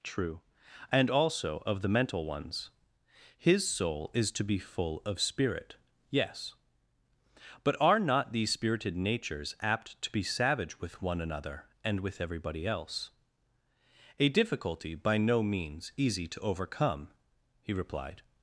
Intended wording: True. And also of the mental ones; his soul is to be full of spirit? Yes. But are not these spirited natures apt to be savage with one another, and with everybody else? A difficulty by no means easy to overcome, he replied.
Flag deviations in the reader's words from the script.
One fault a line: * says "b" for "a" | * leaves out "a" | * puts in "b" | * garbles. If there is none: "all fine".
all fine